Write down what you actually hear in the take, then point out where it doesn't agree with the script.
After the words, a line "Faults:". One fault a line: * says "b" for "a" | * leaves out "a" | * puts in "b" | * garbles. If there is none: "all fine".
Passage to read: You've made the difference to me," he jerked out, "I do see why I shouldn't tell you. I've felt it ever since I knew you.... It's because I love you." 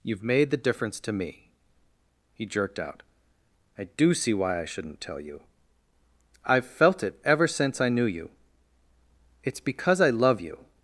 You've made the difference to me," he jerked out, "I do see why I shouldn't tell you. I've felt it ever since I knew you.... It's because I love you."
Faults:
all fine